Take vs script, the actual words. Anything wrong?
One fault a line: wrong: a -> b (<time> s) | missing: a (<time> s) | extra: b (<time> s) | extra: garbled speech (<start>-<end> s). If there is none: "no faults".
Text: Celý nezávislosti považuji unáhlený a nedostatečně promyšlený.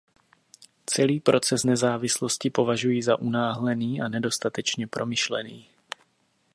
extra: proces (1.2 s)
extra: za (3.0 s)